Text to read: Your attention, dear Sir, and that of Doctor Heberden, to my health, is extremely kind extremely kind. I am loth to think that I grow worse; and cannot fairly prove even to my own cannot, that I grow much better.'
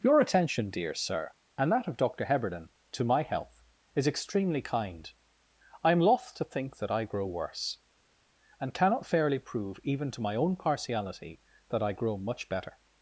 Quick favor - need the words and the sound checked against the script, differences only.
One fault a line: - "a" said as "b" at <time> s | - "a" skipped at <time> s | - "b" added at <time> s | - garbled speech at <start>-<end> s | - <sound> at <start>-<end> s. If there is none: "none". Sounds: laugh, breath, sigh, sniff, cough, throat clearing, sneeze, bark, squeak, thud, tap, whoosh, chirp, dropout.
- "extremely kind" skipped at 5.1 s
- "cannot" said as "partiality" at 10.6 s